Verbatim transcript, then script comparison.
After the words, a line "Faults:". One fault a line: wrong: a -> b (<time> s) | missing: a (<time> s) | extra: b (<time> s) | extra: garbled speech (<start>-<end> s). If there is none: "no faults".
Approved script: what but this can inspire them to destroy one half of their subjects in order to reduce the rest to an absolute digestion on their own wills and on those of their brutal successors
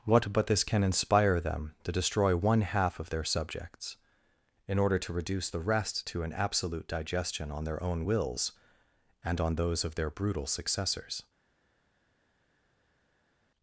what but this can inspire them to destroy one half of their subjects in order to reduce the rest to an absolute digestion on their own wills and on those of their brutal successors
Faults:
no faults